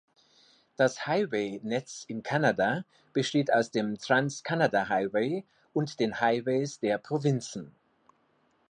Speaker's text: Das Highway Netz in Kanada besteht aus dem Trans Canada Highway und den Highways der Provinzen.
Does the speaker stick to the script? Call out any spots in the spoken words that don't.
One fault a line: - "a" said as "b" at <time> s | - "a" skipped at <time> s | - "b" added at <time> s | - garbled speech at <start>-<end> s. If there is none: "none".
none